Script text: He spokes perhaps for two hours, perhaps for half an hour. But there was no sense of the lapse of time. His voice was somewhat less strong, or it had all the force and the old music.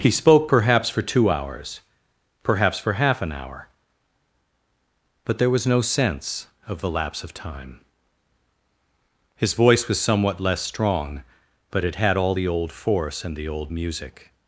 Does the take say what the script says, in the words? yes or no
no